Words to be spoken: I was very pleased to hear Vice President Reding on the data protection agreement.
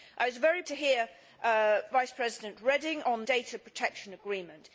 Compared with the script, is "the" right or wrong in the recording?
wrong